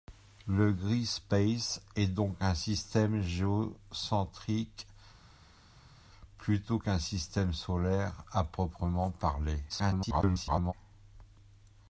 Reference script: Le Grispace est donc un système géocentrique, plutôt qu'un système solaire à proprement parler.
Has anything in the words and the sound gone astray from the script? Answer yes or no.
yes